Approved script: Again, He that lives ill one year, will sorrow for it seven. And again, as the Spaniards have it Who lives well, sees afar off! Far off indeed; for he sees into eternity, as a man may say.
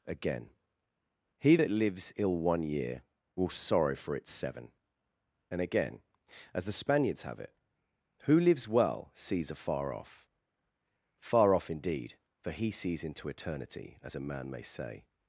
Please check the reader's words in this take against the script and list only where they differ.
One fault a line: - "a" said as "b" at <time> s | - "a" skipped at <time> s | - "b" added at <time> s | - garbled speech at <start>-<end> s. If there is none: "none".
none